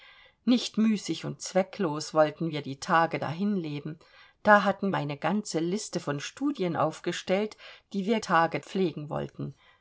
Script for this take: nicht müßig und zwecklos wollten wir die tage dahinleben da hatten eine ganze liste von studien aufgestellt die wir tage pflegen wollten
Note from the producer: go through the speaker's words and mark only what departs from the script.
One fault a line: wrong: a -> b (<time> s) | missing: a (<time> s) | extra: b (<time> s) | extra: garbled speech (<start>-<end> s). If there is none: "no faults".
no faults